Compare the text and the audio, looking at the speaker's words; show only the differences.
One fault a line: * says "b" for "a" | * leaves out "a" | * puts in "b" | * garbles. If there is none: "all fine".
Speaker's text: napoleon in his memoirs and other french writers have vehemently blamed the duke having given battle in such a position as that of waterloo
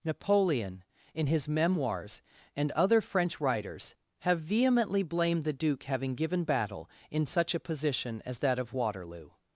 all fine